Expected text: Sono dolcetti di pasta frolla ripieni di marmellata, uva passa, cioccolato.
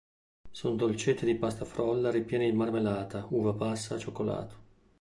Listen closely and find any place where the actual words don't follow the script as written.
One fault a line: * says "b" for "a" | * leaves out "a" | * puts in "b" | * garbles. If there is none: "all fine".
all fine